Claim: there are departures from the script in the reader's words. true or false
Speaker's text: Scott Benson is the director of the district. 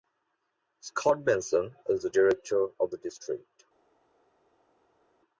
false